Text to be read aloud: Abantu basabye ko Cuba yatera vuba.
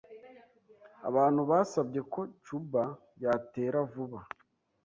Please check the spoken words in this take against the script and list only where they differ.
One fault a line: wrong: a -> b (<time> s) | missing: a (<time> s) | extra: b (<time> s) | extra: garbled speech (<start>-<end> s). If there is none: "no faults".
no faults